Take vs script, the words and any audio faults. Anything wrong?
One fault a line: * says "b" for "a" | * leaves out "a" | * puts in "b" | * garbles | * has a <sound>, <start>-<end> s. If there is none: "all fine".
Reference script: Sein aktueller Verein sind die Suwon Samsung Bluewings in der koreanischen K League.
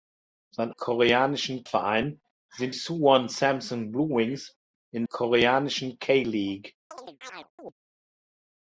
* says "koreanischen" for "aktueller"
* leaves out "die"
* leaves out "der"
* has a chirp, 6.9-7.7 s